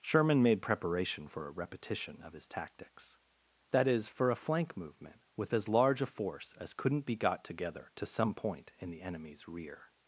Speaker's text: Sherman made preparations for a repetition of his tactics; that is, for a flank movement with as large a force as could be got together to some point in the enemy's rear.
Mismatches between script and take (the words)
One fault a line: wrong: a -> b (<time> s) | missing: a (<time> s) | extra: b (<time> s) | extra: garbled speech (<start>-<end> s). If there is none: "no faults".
wrong: preparations -> preparation (0.6 s)
wrong: could -> couldn't (6.7 s)